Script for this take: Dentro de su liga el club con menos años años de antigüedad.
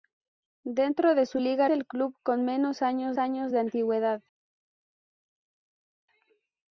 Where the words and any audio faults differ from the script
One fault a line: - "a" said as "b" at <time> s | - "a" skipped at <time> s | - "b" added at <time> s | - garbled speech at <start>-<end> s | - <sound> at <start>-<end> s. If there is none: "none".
none